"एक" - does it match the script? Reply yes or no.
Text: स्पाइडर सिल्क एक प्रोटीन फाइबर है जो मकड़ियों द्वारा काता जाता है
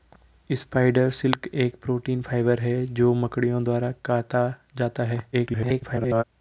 yes